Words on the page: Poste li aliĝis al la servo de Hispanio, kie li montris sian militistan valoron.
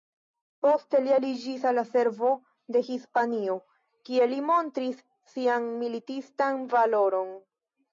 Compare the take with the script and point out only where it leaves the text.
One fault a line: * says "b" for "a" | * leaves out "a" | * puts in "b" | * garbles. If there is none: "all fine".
all fine